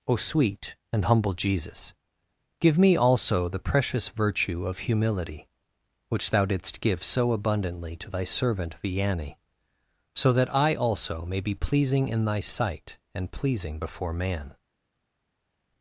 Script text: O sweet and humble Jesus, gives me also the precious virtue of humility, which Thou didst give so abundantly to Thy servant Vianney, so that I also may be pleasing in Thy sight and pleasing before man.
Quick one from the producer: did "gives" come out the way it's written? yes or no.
no